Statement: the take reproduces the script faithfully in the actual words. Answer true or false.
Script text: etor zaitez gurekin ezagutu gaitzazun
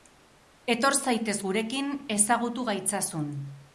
true